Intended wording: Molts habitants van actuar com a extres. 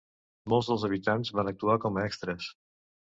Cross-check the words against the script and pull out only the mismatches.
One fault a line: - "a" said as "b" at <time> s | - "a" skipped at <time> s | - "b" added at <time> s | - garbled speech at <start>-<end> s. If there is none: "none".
- "dels" added at 0.7 s